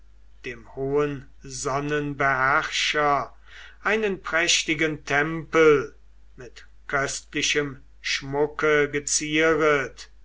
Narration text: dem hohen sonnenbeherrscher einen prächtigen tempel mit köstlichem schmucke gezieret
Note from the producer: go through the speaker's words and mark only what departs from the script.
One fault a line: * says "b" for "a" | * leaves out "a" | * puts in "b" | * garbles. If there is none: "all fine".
all fine